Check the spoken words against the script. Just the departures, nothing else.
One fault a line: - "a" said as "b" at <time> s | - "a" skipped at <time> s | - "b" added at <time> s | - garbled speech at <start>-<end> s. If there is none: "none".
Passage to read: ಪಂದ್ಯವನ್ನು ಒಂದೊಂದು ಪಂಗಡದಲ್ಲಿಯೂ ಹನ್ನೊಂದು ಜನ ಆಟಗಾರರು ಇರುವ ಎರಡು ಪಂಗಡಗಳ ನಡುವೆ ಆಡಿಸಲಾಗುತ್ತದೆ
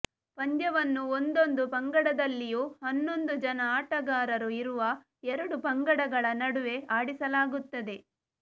none